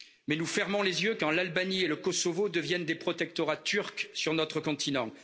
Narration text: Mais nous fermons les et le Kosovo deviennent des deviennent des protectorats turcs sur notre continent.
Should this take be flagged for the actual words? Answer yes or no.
yes